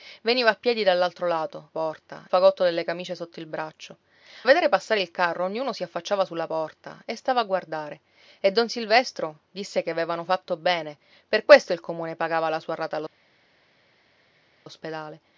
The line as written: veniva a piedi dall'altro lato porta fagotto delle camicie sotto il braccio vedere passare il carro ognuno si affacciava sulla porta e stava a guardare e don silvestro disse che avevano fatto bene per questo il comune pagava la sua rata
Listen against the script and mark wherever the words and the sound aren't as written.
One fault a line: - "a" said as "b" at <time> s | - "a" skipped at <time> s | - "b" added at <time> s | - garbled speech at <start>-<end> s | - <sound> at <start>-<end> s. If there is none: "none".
none